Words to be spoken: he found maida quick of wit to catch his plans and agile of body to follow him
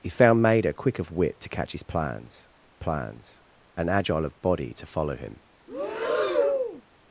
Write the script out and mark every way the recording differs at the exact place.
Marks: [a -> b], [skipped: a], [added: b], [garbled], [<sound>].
he found maida quick of wit to catch his plans [added: plans] and agile of body to follow him [breath]